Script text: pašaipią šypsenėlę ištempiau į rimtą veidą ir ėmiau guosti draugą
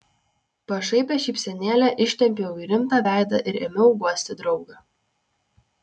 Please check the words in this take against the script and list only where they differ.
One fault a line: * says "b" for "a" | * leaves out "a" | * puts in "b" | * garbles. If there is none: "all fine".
all fine